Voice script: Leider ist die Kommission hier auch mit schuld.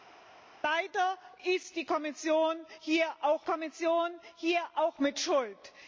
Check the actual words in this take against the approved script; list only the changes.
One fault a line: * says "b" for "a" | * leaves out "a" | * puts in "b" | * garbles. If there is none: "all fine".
* puts in "Kommission hier auch"